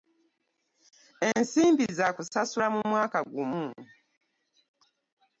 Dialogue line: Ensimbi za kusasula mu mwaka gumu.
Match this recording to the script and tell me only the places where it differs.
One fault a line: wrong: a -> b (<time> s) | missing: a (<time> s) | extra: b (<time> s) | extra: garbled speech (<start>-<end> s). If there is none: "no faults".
no faults